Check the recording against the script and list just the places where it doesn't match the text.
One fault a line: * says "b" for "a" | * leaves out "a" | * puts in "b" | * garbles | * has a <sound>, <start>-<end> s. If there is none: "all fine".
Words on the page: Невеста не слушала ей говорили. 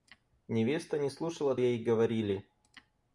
all fine